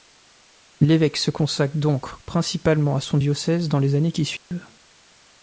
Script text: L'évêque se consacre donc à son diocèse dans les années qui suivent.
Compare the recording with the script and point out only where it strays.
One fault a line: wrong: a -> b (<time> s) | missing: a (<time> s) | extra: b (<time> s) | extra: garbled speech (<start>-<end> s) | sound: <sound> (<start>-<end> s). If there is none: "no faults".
extra: principalement (2.2 s)
sound: dropout (4.4-4.5 s)